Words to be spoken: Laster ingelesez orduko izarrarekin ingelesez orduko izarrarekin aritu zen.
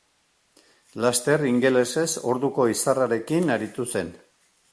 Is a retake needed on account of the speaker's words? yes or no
yes